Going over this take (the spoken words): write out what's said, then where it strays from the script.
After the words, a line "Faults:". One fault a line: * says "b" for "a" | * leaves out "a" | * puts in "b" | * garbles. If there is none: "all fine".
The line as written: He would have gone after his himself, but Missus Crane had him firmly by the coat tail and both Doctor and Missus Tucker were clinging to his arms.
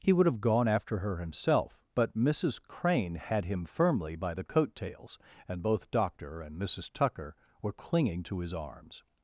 He would have gone after her himself, but Missus Crane had him firmly by the coat tails and both Doctor and Missus Tucker were clinging to his arms.
Faults:
* says "her" for "his"
* says "tails" for "tail"